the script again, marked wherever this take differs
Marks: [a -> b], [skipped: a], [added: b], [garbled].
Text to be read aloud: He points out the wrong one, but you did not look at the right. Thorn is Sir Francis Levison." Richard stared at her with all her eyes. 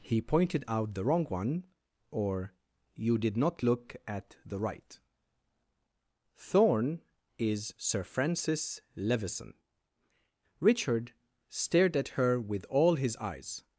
He [points -> pointed] out the wrong one, [but -> or] you did not look at the right. Thorn is Sir Francis Levison." Richard stared at her with all [her -> his] eyes.